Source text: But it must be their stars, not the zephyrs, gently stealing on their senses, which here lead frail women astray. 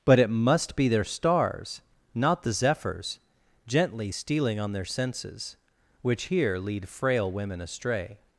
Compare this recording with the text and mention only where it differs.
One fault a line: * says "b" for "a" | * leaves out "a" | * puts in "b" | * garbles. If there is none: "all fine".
all fine